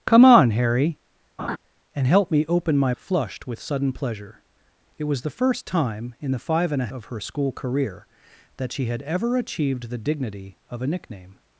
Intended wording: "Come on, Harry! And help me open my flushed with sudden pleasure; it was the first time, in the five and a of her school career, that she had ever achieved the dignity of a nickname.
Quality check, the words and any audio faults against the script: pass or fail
fail